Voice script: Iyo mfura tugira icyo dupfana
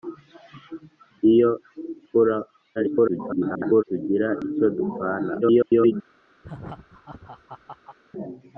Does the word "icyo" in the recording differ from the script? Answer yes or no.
no